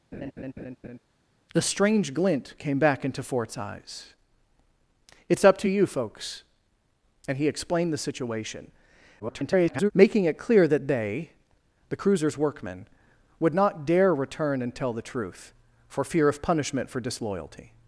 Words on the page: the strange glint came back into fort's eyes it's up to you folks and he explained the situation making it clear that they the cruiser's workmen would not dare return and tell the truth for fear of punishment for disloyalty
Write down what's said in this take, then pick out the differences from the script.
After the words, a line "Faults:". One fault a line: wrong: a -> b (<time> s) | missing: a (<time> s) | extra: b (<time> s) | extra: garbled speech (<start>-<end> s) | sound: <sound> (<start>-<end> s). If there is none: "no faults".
the strange glint came back into fort's eyes it's up to you folks and he explained the situation [garbled] making it clear that they the cruiser's workmen would not dare return and tell the truth for fear of punishment for disloyalty
Faults:
sound: laugh (0.1-1.0 s)
extra: garbled speech (9.2-9.9 s)